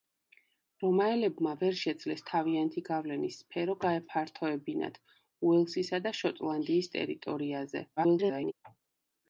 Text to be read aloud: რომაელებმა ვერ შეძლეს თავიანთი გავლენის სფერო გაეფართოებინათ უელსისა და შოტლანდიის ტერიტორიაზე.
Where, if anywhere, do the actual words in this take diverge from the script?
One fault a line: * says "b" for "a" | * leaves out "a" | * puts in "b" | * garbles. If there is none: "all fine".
* garbles